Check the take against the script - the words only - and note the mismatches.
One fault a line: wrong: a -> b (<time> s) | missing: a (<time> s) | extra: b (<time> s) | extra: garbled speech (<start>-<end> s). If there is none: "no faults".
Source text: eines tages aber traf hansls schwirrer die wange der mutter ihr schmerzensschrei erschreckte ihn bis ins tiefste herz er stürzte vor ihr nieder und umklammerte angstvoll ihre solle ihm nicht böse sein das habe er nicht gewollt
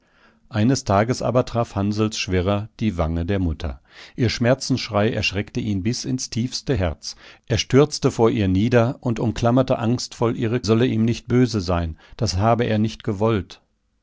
no faults